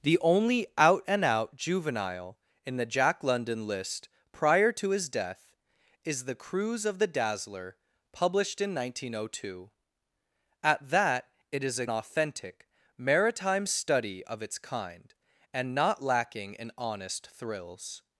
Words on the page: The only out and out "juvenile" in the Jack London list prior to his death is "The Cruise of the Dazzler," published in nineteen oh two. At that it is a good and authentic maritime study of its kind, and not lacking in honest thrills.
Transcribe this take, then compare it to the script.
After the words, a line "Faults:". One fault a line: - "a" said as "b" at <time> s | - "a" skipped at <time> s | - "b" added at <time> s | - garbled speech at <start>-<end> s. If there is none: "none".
The only out and out "juvenile" in the Jack London list prior to his death is "The Cruise of the Dazzler," published in nineteen oh two. At that it is a authentic maritime study of its kind, and not lacking in honest thrills.
Faults:
- "good and" skipped at 11.8 s